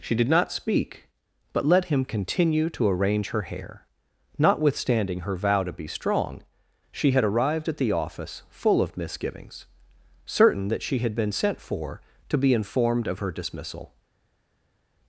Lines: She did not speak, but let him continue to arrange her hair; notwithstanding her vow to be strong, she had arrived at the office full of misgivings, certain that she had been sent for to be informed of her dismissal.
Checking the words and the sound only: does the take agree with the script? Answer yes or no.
yes